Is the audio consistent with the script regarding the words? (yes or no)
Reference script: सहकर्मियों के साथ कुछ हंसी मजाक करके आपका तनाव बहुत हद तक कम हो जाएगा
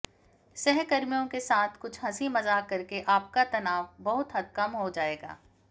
no